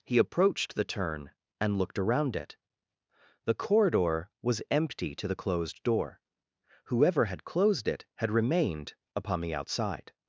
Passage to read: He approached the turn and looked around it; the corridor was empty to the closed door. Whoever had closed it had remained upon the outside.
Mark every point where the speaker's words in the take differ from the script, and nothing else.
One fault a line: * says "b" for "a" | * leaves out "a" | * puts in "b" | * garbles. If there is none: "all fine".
all fine